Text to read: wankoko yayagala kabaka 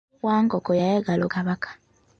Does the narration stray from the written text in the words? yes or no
no